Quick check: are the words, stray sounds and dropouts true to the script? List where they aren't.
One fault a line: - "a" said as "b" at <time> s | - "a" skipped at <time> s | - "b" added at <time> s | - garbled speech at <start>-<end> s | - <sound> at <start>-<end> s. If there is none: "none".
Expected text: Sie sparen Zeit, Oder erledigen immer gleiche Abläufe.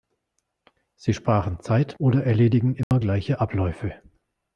- dropout at 2.8-2.9 s